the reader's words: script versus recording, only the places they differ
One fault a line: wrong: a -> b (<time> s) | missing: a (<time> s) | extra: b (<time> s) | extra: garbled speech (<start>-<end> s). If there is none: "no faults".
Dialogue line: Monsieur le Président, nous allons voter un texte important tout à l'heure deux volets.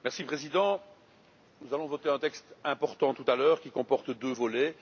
extra: qui comporte (3.6 s)